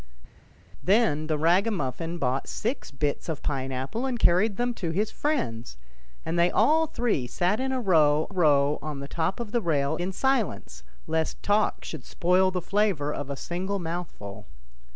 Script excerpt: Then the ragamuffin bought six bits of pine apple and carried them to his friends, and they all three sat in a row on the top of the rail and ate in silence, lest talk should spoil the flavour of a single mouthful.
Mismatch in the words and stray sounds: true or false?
true